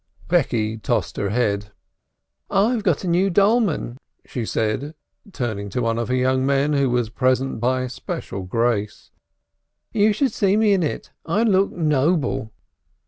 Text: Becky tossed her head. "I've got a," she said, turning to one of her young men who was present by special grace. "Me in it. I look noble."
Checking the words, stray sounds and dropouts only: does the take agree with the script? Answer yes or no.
no